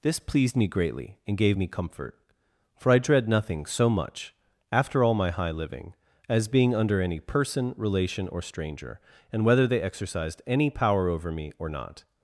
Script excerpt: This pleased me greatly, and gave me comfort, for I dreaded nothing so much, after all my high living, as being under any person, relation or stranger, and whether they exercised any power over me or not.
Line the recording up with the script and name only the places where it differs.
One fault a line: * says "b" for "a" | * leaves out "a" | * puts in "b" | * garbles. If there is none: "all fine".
* says "dread" for "dreaded"